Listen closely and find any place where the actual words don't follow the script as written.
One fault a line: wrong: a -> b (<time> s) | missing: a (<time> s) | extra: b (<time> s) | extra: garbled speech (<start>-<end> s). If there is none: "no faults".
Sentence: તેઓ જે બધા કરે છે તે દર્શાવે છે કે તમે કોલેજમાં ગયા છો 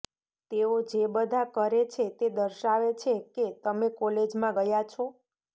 no faults